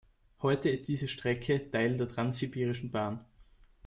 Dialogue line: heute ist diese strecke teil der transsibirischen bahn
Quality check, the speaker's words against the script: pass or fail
pass